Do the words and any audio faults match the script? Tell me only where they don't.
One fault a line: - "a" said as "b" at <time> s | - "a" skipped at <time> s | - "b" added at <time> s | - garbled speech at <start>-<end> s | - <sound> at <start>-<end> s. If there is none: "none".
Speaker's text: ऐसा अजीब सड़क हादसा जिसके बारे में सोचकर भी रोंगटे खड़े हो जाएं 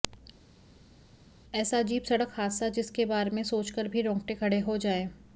none